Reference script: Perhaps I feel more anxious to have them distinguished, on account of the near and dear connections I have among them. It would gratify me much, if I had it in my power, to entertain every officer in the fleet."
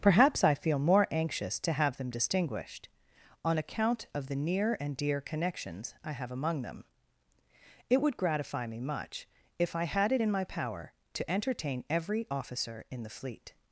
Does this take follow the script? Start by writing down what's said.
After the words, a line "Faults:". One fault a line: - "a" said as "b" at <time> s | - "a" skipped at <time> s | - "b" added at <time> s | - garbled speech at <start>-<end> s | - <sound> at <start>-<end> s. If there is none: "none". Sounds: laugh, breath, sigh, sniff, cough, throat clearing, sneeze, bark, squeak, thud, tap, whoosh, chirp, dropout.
Perhaps I feel more anxious to have them distinguished, on account of the near and dear connections I have among them. It would gratify me much, if I had it in my power, to entertain every officer in the fleet."
Faults:
none